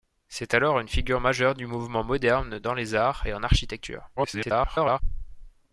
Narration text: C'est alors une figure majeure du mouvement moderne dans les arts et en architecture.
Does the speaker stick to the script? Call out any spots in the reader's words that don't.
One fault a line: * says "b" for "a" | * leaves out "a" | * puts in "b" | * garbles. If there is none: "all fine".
* garbles